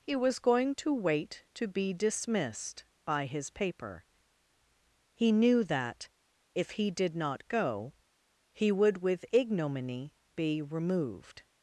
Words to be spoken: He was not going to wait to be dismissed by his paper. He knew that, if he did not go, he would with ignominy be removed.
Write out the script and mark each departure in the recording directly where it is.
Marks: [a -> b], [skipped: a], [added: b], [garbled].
He was [skipped: not] going to wait to be dismissed by his paper. He knew that, if he did not go, he would with ignominy be removed.